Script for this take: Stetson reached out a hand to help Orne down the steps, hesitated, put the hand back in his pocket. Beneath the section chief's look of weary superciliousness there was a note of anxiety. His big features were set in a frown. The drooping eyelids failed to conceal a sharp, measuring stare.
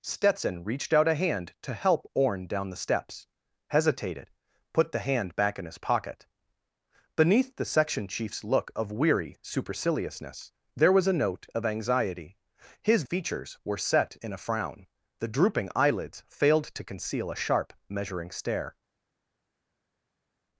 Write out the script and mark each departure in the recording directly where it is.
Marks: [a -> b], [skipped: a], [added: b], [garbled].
Stetson reached out a hand to help Orne down the steps, hesitated, put the hand back in his pocket. Beneath the section chief's look of weary superciliousness there was a note of anxiety. His [skipped: big] features were set in a frown. The drooping eyelids failed to conceal a sharp, measuring stare.